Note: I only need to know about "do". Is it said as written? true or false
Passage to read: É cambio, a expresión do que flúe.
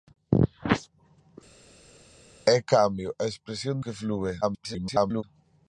false